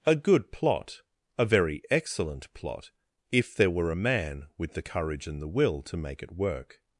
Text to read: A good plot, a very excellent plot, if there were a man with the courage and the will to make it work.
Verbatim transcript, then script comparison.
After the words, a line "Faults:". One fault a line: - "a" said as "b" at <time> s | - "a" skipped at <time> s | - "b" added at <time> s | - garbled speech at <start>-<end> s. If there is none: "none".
A good plot, a very excellent plot, if there were a man with the courage and the will to make it work.
Faults:
none